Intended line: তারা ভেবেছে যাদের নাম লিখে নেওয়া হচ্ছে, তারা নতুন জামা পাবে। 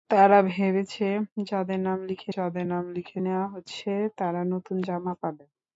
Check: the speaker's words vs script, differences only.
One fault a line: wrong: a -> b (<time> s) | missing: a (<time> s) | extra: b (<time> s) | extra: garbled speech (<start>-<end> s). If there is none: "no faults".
extra: যাদের নাম লিখে (2.3 s)